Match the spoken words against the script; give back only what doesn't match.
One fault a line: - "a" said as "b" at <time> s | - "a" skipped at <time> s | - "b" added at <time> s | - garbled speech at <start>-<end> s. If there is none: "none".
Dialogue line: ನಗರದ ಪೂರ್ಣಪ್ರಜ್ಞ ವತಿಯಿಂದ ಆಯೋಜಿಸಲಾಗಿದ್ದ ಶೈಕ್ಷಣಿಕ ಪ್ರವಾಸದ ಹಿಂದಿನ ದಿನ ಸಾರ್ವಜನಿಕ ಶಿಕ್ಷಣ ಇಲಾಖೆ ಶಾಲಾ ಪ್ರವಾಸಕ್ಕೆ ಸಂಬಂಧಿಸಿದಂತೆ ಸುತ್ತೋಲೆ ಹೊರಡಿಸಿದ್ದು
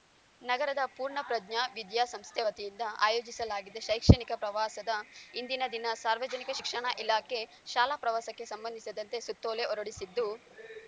- "ವಿದ್ಯಾಸಂಸ್ಥೆ" added at 1.8 s